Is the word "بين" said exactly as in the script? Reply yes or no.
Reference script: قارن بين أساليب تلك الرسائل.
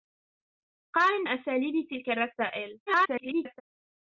no